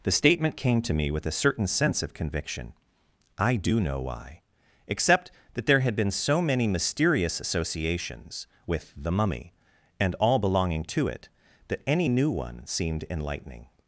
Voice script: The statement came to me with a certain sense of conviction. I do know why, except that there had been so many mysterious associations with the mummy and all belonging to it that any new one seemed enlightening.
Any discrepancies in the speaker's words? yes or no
no